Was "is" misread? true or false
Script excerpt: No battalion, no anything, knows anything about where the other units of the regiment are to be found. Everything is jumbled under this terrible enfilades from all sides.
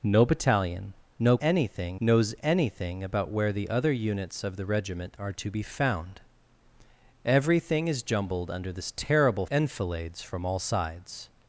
false